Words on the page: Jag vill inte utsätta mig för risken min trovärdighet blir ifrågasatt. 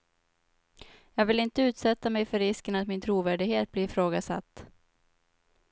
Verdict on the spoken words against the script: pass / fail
fail